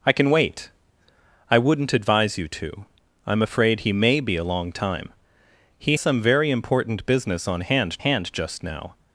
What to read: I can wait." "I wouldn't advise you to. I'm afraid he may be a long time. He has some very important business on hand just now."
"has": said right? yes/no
no